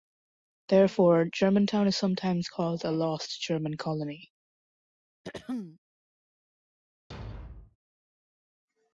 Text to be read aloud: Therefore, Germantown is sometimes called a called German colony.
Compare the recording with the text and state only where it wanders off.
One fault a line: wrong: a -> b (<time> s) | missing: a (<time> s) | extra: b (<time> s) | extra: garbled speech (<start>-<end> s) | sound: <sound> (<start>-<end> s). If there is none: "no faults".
wrong: called -> lost (2.9 s)
sound: throat clearing (5.2-5.8 s)
sound: thud (7.1-7.8 s)